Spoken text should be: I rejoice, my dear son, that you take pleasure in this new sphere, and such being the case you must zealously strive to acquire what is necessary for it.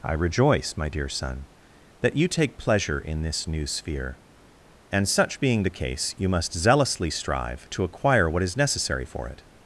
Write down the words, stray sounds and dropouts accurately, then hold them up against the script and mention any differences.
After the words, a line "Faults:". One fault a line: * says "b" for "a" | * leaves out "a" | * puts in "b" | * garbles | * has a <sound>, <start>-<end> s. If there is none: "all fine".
I rejoice, my dear son, that you take pleasure in this new sphere, and such being the case you must zealously strive to acquire what is necessary for it.
Faults:
all fine